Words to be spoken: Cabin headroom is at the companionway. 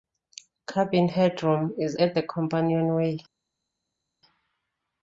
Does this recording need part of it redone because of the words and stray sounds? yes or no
no